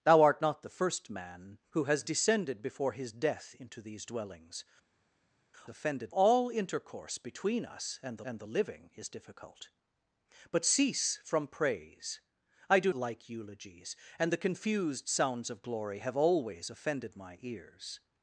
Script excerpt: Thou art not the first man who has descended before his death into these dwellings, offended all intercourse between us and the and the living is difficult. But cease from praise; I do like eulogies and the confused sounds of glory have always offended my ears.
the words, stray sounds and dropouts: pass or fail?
pass